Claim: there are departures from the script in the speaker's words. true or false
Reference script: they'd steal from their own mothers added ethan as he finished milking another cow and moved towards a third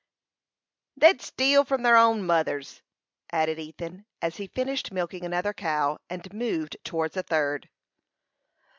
false